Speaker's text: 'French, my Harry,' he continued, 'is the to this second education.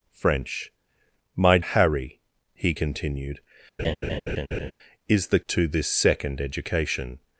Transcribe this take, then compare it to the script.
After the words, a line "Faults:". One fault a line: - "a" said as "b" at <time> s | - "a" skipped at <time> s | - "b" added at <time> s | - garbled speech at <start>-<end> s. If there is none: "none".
'French, my Harry,' he continued, 'is the to this second education.
Faults:
none